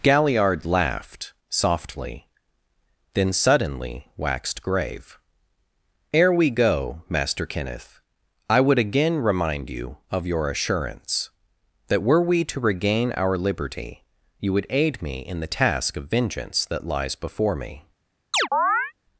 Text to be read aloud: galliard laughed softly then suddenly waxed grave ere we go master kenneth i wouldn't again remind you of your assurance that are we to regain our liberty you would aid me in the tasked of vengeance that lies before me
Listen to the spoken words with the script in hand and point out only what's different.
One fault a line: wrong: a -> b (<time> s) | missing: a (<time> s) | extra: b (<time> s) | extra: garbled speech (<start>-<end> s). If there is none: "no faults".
wrong: wouldn't -> would (8.6 s)
wrong: are -> were (12.0 s)
wrong: tasked -> task (15.4 s)